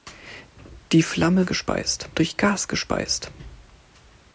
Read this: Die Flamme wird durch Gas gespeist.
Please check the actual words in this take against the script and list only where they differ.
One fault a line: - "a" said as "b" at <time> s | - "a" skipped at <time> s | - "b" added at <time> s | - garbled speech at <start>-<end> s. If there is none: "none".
- "wird" said as "gespeist" at 1.4 s